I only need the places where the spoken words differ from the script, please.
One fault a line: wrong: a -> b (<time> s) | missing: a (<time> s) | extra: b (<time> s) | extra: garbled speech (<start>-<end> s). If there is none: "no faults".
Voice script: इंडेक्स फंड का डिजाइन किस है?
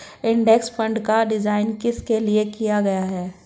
extra: लिए किया गया (2.2 s)